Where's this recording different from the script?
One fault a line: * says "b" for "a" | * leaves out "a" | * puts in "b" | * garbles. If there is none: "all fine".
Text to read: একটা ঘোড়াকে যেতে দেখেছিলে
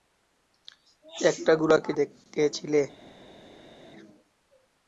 * leaves out "যেতে"